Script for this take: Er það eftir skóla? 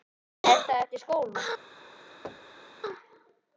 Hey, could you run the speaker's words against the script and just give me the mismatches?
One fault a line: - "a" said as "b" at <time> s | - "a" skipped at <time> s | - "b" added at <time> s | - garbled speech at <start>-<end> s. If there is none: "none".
none